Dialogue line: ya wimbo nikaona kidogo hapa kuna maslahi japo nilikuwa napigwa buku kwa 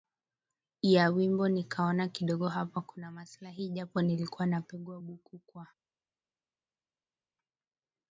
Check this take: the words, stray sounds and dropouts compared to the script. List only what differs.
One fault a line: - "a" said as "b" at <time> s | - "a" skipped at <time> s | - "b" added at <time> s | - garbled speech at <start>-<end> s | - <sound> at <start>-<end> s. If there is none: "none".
none